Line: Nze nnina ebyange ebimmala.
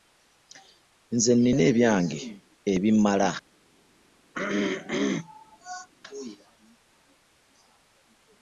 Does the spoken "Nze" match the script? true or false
true